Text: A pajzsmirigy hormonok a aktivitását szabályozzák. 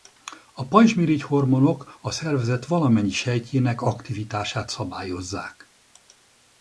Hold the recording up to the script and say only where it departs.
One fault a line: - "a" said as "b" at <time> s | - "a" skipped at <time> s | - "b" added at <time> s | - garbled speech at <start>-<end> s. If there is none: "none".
- "szervezet valamennyi sejtjének" added at 2.1 s